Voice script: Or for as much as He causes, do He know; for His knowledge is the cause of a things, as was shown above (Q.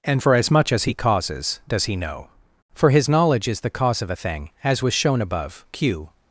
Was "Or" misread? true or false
true